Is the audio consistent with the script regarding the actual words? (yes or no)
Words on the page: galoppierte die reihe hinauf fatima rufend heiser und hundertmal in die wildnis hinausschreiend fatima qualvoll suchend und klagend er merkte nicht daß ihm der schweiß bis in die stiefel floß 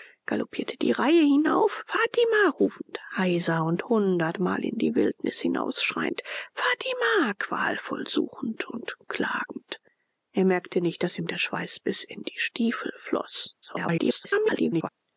no